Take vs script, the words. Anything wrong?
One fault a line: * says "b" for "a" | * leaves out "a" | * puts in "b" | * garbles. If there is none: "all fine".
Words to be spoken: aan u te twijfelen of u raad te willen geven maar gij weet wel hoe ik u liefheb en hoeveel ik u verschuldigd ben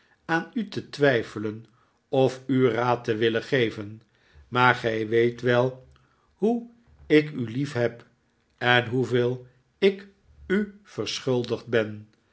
all fine